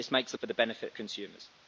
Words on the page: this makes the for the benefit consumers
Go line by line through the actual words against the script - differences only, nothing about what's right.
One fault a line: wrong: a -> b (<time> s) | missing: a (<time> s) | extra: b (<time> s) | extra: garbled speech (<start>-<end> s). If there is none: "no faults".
no faults